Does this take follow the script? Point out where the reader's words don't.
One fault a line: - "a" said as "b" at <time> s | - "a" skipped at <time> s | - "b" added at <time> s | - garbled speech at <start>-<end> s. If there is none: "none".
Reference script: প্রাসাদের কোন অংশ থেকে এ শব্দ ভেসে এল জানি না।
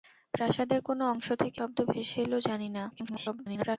- "এ" skipped at 1.6 s
- garbled speech at 2.9-3.8 s